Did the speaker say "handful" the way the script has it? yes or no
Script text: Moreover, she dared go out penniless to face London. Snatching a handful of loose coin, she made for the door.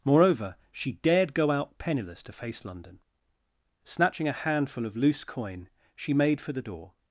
yes